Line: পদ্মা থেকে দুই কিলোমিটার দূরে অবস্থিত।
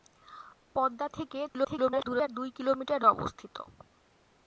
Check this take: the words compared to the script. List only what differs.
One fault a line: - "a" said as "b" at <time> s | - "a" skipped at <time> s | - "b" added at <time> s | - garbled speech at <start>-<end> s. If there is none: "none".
- garbled speech at 1.5-2.3 s
- "দূরে" skipped at 3.0 s